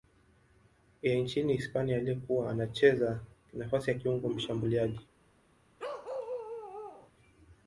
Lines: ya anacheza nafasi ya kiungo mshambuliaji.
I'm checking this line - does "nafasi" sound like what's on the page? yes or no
yes